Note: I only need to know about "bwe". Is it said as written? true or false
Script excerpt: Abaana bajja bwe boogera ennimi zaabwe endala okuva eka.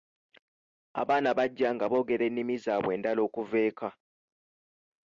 false